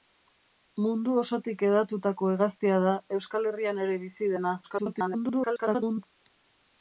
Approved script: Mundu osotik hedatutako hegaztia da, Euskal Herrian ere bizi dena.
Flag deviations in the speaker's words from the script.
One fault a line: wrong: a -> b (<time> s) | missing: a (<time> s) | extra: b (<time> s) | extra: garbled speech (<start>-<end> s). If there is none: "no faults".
extra: garbled speech (4.6-6.0 s)